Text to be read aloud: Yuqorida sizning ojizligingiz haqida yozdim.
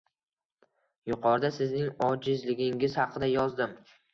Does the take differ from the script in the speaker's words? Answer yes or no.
no